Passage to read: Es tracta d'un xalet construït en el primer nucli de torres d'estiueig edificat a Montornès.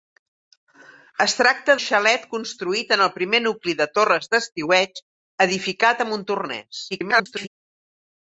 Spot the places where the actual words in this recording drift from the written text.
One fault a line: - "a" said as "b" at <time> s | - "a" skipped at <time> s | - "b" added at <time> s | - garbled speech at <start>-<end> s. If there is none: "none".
- "d'un" skipped at 1.8 s
- garbled speech at 6.9-7.5 s